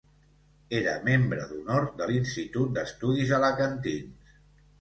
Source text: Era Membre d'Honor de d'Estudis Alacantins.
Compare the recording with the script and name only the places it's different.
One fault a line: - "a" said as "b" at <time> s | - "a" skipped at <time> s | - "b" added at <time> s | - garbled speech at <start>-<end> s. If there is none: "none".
- "l'Institut" added at 2.1 s